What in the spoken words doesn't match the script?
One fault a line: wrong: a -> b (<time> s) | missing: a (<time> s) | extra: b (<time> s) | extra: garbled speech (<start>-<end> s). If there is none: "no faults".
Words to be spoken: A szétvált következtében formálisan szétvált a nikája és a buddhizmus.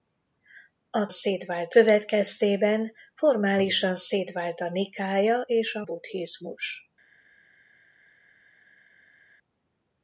no faults